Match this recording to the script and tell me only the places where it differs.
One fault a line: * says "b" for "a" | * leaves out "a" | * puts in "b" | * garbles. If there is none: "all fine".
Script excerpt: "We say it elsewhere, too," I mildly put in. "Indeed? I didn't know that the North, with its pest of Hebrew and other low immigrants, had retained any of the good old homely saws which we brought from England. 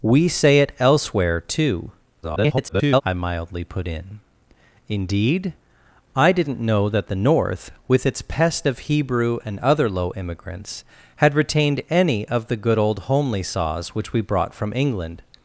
* garbles